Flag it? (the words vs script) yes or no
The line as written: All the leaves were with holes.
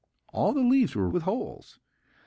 no